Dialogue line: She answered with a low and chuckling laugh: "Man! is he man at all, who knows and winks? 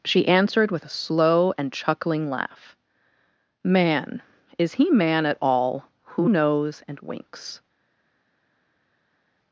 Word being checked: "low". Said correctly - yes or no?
no